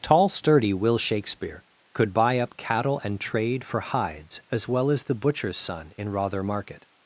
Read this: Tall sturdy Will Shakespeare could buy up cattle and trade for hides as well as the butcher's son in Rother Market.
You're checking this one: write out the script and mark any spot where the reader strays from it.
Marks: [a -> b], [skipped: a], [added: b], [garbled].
Tall sturdy Will Shakespeare could buy up cattle and trade for hides as well as the butcher's son in Rother Market.